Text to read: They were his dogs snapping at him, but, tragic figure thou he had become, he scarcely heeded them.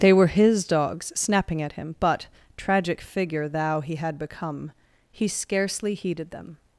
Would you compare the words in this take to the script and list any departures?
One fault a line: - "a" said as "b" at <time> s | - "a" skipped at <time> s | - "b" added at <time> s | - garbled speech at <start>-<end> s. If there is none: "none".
none